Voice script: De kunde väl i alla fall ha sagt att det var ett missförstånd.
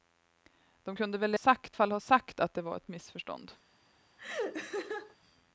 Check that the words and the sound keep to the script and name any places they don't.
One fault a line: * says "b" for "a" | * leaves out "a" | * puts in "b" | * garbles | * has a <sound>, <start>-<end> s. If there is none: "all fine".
* says "sagt" for "alla"
* puts in "ett"
* has a laugh, 4.2-5.2 s